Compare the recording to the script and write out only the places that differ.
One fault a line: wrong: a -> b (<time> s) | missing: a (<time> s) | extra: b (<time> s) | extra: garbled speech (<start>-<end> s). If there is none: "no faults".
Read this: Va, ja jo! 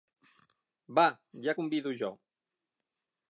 extra: convido (1.6 s)